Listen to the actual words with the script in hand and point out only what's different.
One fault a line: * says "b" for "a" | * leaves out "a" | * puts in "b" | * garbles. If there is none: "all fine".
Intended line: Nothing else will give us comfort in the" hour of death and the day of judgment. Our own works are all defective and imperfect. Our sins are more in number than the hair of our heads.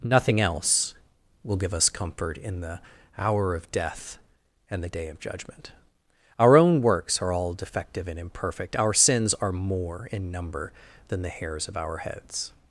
* says "hairs" for "hair"